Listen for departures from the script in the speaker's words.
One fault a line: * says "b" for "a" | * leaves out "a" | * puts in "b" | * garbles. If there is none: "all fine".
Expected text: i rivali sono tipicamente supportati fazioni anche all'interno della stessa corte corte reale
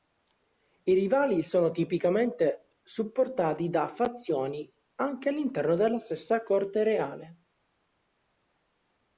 * puts in "da"
* leaves out "corte"